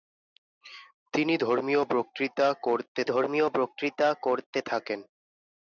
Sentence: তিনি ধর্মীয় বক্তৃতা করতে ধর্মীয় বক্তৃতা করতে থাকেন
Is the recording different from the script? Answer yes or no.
no